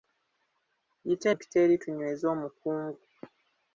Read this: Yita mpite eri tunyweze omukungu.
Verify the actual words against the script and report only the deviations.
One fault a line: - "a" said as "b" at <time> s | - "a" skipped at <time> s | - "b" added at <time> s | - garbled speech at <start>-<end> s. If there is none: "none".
none